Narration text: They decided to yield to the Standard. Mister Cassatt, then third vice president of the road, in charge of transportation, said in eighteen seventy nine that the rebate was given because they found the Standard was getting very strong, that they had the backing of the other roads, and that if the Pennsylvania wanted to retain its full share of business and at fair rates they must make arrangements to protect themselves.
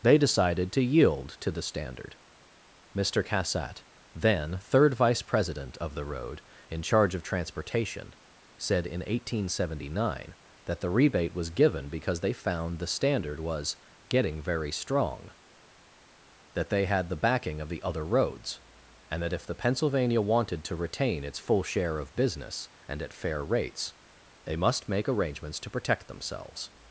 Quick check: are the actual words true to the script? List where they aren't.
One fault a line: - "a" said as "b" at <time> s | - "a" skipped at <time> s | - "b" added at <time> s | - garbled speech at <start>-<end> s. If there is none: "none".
none